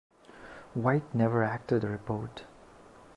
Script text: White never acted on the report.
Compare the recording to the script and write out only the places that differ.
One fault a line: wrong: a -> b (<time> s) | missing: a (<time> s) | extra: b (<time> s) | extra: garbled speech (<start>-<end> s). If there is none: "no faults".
missing: on (1.8 s)